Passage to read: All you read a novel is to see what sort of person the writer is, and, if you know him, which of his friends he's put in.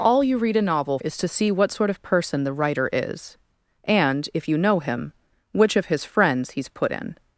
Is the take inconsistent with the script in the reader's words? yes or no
no